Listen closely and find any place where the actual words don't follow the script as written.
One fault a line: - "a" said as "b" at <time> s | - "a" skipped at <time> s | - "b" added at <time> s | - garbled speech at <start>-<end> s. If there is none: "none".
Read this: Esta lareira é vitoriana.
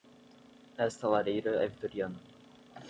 none